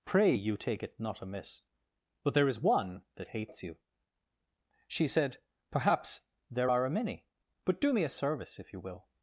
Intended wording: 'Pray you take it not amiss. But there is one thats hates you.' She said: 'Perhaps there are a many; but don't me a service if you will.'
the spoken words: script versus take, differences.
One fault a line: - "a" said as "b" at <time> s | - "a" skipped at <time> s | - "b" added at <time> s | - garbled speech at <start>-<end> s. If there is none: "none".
- "thats" said as "that" at 3.1 s
- "don't" said as "do" at 7.8 s